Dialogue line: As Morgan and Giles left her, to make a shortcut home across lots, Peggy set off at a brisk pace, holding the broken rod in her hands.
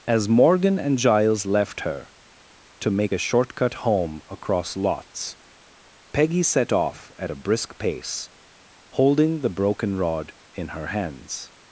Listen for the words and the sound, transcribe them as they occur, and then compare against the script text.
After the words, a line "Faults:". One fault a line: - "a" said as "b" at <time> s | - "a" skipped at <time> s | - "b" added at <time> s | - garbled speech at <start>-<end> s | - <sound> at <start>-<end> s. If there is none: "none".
As Morgan and Giles left her, to make a shortcut home across lots, Peggy set off at a brisk pace, holding the broken rod in her hands.
Faults:
none